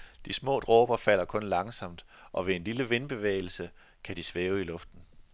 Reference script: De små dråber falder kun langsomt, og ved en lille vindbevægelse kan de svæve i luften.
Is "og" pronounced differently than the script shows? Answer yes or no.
no